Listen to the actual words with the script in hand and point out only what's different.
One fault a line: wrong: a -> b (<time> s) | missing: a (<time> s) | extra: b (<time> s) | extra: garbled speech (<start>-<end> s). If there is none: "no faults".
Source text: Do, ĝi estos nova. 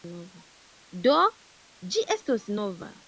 no faults